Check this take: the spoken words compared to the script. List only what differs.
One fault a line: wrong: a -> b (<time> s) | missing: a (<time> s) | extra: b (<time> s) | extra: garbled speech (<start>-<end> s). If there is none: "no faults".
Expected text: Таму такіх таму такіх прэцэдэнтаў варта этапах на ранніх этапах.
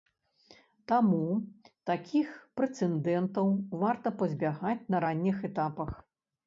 missing: таму такіх (2.3 s)
wrong: этапах -> пазбягаць (4.2 s)